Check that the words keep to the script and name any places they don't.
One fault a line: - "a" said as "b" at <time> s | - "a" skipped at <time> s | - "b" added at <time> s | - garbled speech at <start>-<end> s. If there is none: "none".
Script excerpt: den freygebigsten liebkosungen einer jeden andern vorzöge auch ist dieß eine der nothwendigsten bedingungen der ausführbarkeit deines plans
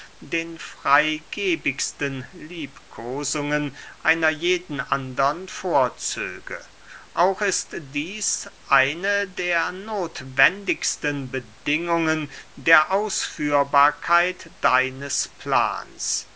none